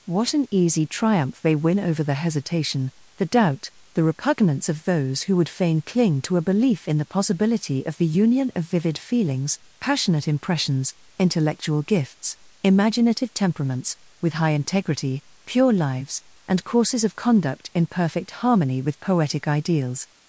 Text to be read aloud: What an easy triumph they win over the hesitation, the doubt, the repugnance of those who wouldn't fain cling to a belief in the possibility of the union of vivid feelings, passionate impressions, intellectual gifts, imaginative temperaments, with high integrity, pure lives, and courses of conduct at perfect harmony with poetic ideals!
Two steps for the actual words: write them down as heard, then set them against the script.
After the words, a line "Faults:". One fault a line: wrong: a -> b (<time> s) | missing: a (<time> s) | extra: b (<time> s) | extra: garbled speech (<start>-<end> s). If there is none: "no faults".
What an easy triumph they win over the hesitation, the doubt, the repugnance of those who would fain cling to a belief in the possibility of the union of vivid feelings, passionate impressions, intellectual gifts, imaginative temperaments, with high integrity, pure lives, and courses of conduct in perfect harmony with poetic ideals!
Faults:
wrong: wouldn't -> would (5.3 s)
wrong: at -> in (17.8 s)